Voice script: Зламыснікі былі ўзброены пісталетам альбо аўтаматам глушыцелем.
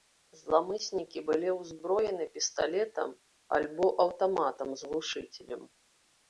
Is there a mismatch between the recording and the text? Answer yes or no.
yes